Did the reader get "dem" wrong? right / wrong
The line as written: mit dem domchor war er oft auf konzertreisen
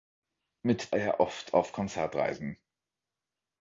wrong